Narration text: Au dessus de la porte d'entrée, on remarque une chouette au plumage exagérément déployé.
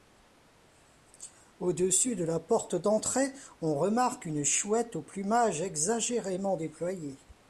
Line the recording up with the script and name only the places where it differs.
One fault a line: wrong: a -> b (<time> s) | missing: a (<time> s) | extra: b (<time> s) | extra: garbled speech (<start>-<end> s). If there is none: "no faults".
no faults